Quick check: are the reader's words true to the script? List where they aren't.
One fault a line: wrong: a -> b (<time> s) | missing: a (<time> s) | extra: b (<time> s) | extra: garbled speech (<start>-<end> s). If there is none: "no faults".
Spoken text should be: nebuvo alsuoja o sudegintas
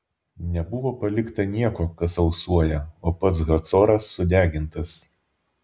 extra: palikta nieko kas (1.0 s)
extra: pats hacoras (3.3 s)